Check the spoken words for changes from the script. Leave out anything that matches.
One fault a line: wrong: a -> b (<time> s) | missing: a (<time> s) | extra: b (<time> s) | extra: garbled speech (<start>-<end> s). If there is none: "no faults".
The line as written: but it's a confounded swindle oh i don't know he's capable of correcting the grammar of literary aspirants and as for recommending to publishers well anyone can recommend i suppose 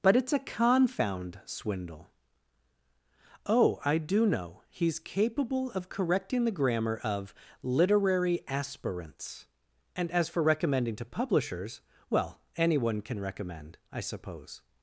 wrong: confounded -> confound (0.4 s)
wrong: don't -> do (4.0 s)